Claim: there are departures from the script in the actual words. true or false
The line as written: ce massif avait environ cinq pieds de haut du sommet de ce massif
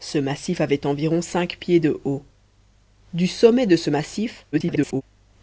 true